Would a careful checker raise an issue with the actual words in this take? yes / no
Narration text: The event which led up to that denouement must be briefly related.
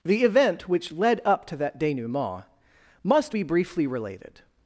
no